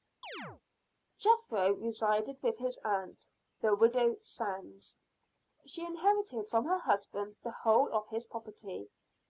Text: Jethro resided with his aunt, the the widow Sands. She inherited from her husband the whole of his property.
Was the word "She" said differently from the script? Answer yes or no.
no